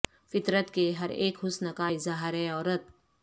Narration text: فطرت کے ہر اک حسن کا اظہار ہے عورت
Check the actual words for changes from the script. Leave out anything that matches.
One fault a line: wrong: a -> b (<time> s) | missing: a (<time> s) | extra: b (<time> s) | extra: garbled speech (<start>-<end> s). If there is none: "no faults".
no faults